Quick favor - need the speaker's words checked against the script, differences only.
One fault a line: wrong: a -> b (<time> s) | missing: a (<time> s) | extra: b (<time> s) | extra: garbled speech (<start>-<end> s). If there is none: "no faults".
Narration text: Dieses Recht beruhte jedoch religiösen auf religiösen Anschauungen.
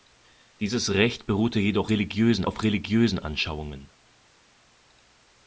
no faults